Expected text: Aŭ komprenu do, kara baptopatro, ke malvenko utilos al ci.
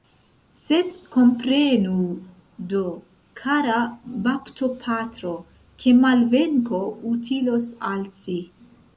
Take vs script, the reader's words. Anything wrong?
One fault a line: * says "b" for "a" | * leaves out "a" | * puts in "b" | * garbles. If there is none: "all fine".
* says "Sed" for "Aŭ"